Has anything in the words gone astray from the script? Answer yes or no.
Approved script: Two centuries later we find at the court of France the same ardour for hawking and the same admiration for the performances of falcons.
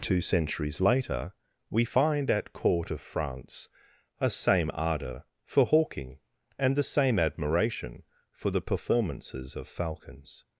yes